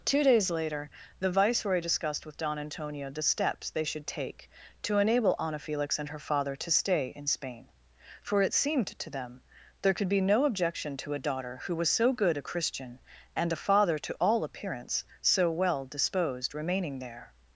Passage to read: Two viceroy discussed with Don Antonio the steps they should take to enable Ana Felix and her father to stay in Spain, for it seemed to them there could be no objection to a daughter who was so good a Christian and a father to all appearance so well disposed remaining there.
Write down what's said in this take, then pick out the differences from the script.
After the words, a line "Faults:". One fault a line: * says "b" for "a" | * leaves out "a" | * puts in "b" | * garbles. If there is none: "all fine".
Two days later the viceroy discussed with Don Antonio the steps they should take to enable Ana Felix and her father to stay in Spain, for it seemed to them there could be no objection to a daughter who was so good a Christian and a father to all appearance so well disposed remaining there.
Faults:
* puts in "days later the"